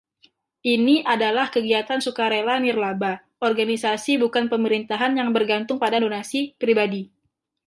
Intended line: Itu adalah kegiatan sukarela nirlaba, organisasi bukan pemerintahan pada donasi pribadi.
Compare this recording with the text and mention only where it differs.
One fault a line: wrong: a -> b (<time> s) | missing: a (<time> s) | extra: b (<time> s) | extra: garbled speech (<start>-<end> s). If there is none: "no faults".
wrong: Itu -> Ini (0.7 s)
extra: yang bergantung (5.2 s)